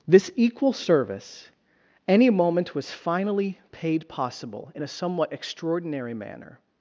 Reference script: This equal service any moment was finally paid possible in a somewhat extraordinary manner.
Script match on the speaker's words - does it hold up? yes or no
yes